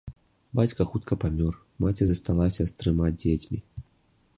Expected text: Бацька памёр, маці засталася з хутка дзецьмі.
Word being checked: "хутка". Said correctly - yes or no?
no